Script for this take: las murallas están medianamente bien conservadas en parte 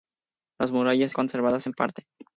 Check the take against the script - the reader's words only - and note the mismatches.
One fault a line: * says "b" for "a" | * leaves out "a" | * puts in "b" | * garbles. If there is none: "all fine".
* leaves out "están medianamente bien"